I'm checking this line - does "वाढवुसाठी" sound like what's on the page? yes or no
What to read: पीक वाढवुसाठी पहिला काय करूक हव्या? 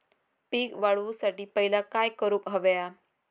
yes